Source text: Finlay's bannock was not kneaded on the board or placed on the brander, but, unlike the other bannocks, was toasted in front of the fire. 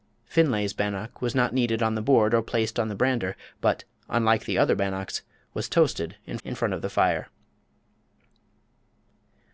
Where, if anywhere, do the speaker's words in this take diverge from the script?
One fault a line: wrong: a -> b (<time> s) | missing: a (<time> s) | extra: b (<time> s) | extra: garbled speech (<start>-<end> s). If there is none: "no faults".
extra: in (6.4 s)